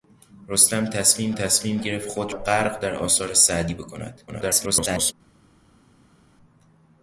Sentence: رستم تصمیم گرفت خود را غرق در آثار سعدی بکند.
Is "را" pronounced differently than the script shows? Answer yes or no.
yes